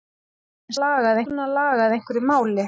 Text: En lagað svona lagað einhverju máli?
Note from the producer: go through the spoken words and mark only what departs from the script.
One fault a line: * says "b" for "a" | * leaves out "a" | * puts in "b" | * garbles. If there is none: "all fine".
all fine